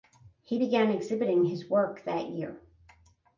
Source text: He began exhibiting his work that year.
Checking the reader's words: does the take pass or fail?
pass